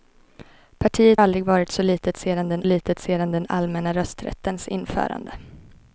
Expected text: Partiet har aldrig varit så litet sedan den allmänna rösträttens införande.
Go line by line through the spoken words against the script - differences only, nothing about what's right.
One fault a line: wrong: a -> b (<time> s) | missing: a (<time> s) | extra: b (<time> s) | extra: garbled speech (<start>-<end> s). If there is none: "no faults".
missing: har (1.2 s)
extra: litet sedan den (2.6 s)